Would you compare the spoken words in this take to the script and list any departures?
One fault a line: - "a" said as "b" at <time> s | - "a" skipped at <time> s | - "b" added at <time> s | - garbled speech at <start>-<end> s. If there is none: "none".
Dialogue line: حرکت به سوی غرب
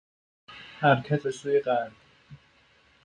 none